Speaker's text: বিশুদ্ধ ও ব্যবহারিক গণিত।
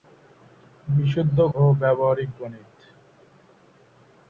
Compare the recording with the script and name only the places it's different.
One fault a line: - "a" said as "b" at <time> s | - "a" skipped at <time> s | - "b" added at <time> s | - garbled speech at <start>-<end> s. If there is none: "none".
none